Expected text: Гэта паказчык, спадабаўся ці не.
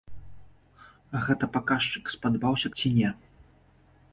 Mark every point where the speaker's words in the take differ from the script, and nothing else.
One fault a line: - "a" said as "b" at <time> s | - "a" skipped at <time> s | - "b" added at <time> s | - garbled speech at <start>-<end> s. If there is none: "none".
none